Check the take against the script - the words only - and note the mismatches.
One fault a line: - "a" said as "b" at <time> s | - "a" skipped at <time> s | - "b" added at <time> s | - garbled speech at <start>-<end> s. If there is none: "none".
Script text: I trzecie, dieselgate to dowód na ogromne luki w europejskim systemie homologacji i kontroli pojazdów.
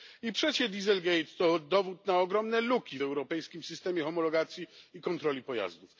none